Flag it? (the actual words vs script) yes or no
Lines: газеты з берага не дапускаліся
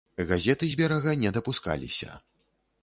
no